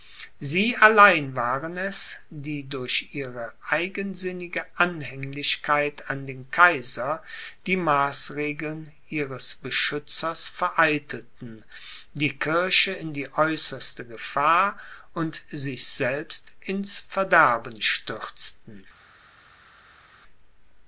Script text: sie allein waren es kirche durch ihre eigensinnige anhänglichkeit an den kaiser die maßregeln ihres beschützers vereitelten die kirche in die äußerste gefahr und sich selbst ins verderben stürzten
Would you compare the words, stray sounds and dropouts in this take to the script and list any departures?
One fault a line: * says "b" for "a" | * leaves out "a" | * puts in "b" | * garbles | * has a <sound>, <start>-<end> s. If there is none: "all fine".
* says "die" for "kirche"